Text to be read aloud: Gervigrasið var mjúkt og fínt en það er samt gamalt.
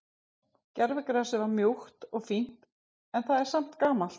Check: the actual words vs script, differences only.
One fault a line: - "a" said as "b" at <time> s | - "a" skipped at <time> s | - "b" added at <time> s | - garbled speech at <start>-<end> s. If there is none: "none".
none